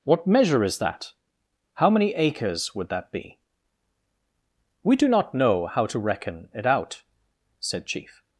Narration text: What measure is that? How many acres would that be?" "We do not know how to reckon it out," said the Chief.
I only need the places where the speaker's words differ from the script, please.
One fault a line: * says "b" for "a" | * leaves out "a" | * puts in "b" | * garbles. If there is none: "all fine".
* leaves out "the"